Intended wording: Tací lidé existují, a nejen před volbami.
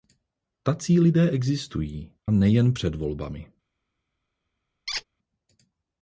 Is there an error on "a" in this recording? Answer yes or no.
yes